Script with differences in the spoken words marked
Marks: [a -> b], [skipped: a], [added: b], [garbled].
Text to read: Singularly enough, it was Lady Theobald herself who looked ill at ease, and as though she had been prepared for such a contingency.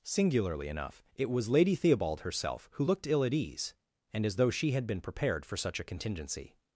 Singularly enough, it was Lady Theobald herself who looked ill at ease, and as though she had been prepared for such a contingency.